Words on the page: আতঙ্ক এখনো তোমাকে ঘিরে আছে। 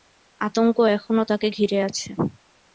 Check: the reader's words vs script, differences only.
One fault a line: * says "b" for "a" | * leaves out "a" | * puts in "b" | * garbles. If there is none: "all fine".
* says "তাকে" for "তোমাকে"